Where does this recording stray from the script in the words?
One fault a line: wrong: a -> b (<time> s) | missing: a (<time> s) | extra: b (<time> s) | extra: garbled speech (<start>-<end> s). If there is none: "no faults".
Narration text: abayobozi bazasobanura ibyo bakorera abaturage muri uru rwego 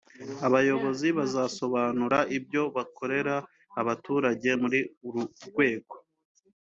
no faults